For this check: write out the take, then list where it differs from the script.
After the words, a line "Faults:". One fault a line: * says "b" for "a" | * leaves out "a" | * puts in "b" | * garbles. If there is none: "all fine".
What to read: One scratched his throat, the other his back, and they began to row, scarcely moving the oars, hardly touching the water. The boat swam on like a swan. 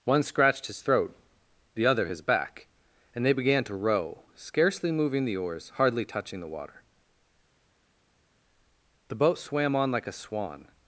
One scratched his throat, the other his back, and they began to row, scarcely moving the oars, hardly touching the water. The boat swam on like a swan.
Faults:
all fine